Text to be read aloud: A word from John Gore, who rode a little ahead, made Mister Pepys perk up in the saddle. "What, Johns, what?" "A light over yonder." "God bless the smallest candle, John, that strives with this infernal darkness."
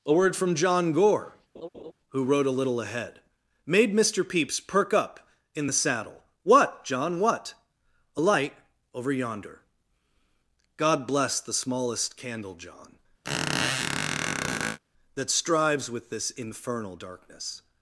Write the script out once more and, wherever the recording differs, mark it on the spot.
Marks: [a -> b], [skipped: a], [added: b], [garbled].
A word from John Gore, who rode a little ahead, made Mister Pepys perk up in the saddle. "What, [Johns, -> John] what?" "A light over yonder." "God bless the smallest candle, John, that strives with this infernal darkness."